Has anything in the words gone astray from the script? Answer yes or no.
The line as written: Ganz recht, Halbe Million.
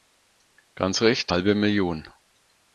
no